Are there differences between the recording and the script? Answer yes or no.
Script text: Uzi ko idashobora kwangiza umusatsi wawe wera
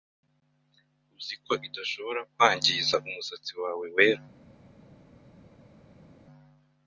no